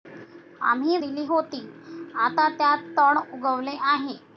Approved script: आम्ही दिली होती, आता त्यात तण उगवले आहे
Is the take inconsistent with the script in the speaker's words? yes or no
no